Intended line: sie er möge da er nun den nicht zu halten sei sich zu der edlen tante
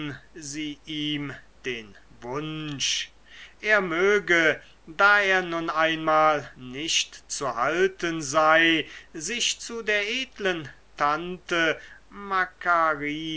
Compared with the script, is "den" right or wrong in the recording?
wrong